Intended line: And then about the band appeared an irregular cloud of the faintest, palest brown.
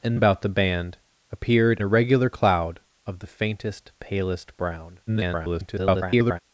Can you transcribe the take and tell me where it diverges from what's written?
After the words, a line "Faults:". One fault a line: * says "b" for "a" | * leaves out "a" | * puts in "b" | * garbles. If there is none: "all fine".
And about the band appeared irregular cloud of the faintest, palest brown. [garbled]
Faults:
* leaves out "then"
* leaves out "an"
* garbles